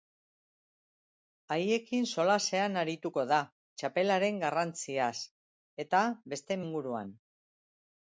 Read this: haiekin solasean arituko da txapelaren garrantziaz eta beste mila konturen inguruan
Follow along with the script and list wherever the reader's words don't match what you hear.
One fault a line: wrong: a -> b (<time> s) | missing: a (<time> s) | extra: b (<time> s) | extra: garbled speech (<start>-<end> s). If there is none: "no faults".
missing: mila konturen (6.6 s)